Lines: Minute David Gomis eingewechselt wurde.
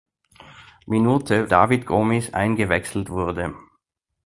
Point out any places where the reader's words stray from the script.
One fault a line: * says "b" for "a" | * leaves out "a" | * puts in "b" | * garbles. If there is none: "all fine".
all fine